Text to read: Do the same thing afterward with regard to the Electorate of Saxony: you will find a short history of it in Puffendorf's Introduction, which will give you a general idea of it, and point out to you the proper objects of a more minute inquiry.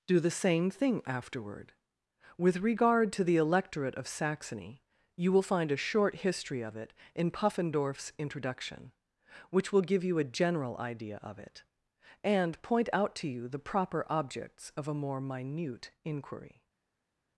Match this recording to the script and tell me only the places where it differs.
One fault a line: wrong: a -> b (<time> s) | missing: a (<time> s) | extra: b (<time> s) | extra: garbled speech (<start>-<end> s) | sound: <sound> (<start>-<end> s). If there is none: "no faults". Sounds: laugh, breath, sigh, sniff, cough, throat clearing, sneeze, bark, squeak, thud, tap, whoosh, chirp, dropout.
no faults